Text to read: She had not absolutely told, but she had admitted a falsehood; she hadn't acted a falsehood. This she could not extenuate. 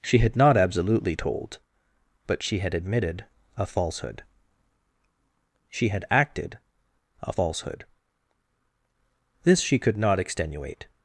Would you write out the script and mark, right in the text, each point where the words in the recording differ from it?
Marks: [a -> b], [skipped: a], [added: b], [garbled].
She had not absolutely told, but she had admitted a falsehood; she [hadn't -> had] acted a falsehood. This she could not extenuate.